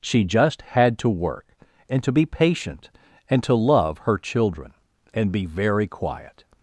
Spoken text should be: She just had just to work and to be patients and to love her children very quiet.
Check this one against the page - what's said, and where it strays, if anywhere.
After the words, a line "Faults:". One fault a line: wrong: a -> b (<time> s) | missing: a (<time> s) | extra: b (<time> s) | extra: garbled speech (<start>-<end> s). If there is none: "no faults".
She just had to work and to be patient and to love her children and be very quiet.
Faults:
missing: just (1.0 s)
wrong: patients -> patient (2.2 s)
extra: and be (5.1 s)